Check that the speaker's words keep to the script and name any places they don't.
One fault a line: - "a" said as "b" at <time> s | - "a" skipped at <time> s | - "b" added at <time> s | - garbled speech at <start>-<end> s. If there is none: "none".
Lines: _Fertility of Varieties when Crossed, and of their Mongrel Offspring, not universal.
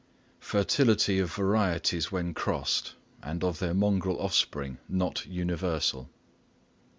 none